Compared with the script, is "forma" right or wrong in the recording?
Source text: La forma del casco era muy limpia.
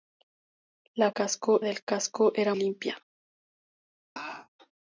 wrong